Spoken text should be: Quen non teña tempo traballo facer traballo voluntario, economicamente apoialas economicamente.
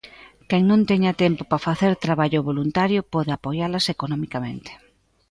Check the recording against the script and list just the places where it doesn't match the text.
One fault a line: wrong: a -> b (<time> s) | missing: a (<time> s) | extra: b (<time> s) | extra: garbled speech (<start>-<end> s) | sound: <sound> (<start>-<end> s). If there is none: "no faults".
wrong: traballo -> para (1.5 s)
wrong: economicamente -> pode (3.1 s)